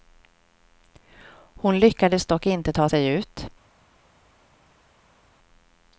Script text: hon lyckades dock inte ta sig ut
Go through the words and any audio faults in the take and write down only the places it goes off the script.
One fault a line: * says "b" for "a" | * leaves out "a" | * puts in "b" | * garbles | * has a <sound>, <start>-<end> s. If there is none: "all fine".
all fine